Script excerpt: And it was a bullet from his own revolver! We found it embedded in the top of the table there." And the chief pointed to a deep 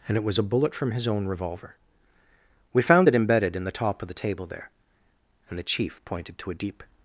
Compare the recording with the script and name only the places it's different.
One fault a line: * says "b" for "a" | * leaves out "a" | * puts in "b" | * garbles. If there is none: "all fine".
all fine